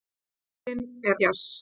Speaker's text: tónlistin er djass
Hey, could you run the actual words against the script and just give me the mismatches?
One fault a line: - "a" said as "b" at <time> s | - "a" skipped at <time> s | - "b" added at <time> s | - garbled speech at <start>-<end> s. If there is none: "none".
none